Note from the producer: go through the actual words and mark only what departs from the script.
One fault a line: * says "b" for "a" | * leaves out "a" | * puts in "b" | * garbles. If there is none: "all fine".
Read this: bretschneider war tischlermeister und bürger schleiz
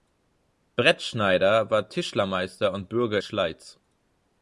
all fine